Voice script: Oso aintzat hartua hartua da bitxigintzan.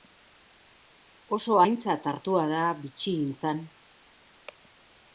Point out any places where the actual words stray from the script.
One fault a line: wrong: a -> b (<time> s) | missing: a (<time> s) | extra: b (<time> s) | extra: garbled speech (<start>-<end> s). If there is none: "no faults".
missing: hartua (2.5 s)